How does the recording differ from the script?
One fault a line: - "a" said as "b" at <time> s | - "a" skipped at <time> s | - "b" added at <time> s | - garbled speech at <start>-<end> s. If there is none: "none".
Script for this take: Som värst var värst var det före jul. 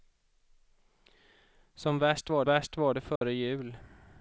none